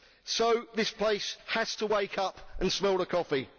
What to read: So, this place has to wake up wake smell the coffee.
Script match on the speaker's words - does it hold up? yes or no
no